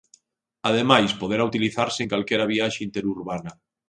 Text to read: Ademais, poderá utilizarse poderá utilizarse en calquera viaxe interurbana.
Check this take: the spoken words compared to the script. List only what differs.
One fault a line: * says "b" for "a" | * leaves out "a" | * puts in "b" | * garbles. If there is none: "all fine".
* leaves out "poderá utilizarse"